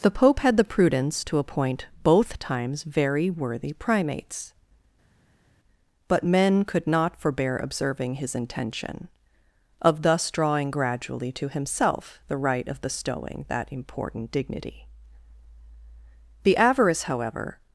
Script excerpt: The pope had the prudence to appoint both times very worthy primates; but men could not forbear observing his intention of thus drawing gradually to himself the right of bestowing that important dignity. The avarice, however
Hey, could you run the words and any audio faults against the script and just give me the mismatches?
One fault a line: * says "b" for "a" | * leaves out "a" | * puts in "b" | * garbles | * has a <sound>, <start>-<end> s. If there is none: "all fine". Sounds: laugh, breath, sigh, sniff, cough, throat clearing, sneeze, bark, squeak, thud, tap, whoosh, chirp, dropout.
all fine